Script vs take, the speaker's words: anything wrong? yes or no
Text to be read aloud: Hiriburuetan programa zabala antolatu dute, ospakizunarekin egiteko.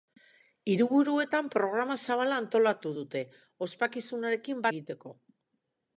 no